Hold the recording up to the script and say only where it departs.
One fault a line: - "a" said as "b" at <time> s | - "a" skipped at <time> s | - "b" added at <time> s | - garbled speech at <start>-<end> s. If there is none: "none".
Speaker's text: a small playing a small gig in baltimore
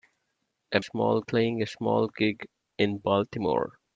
none